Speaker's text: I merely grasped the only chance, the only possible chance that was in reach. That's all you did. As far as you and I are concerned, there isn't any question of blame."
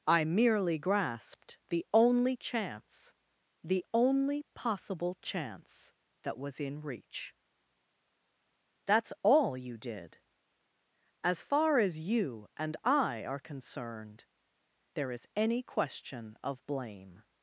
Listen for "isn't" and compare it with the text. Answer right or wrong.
wrong